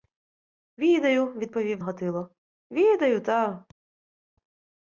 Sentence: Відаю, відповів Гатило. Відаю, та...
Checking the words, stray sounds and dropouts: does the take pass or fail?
pass